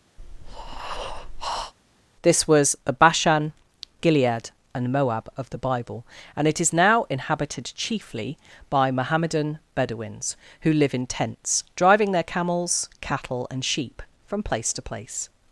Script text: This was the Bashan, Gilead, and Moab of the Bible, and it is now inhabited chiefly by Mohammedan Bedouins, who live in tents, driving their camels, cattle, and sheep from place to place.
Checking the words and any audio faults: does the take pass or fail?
fail